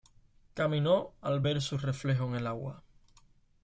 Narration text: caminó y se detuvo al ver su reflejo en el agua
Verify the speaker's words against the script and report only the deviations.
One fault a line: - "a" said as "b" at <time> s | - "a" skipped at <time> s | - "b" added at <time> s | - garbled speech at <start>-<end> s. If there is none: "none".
- "y se detuvo" skipped at 1.1 s